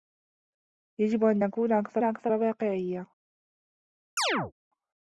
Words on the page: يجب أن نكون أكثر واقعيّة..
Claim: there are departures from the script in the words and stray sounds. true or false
true